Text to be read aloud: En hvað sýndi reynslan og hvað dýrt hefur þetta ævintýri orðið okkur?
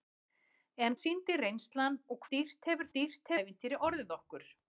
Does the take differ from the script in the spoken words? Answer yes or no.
yes